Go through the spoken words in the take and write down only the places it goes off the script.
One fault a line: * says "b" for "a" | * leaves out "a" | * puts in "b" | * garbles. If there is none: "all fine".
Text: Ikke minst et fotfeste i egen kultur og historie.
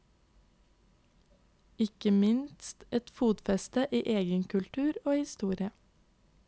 all fine